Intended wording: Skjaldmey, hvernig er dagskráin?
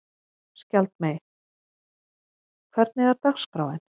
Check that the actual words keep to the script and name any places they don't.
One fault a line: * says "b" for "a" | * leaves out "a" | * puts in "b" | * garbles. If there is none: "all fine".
all fine